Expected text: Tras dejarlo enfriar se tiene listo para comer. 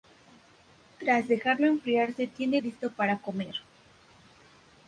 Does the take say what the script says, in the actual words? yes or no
yes